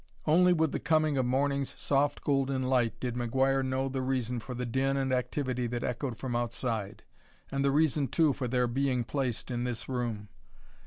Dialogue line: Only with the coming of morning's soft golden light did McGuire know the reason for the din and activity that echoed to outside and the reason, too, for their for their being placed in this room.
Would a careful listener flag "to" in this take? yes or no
yes